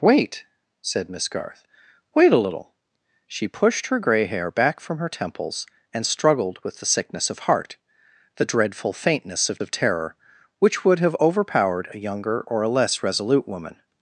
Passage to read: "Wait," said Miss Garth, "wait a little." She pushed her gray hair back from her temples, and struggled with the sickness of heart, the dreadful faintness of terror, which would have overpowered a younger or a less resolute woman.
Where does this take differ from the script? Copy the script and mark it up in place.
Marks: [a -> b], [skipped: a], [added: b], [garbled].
"Wait," said Miss Garth, "wait a little." She pushed her gray hair back from her temples, and struggled with the sickness of heart, the dreadful faintness of [added: of] terror, which would have overpowered a younger or a less resolute woman.